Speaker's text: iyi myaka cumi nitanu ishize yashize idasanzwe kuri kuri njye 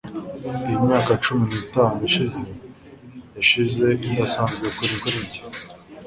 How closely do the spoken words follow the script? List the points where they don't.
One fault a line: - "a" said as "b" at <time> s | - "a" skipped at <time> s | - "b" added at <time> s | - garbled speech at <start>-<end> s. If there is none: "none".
none